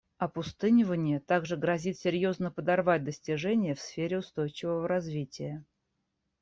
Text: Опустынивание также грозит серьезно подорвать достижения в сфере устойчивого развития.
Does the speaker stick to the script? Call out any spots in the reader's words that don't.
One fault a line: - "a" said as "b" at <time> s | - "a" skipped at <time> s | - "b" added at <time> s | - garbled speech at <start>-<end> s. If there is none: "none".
none